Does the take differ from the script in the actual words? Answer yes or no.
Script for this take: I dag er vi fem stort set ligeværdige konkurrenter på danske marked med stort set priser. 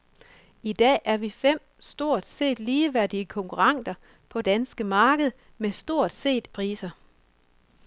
no